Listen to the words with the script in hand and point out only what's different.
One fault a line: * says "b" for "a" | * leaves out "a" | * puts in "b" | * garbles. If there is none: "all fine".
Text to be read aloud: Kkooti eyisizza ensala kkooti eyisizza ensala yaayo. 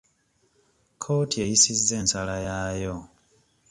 * leaves out "kkooti eyisizza ensala"